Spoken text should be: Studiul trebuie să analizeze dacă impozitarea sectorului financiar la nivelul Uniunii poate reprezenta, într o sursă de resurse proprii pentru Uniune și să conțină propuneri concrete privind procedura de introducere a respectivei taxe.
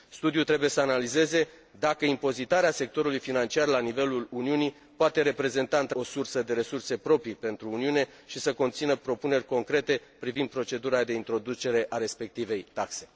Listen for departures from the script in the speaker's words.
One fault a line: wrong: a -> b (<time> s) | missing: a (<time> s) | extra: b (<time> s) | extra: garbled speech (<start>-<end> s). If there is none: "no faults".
no faults